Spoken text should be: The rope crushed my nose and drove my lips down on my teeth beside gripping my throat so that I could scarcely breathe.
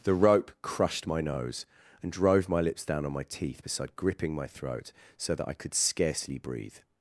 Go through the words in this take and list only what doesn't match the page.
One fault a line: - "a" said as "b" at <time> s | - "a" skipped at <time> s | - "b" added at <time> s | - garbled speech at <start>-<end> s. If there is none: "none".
none